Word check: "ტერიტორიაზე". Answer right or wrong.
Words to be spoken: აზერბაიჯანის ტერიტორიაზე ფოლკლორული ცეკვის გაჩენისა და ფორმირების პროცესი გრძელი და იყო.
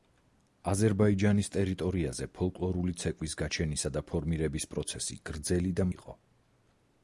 right